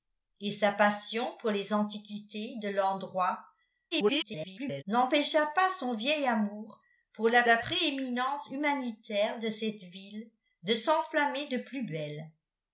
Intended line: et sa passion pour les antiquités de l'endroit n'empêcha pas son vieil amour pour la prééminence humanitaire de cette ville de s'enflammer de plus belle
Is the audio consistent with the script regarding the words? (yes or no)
no